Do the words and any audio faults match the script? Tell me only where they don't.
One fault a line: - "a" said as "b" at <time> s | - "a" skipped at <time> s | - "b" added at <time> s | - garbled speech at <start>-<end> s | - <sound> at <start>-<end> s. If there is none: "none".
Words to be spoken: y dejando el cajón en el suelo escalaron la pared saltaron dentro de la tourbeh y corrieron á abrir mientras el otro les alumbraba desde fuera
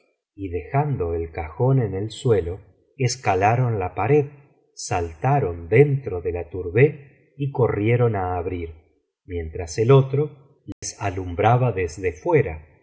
- dropout at 10.7-10.8 s